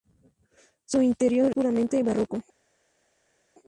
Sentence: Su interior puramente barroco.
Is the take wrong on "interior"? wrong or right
right